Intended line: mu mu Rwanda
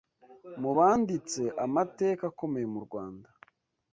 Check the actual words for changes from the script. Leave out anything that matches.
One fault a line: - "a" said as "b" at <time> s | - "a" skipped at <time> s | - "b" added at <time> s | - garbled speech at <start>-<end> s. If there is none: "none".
- "banditse amateka akomeye" added at 0.8 s